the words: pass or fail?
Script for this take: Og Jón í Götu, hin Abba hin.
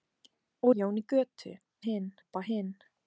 pass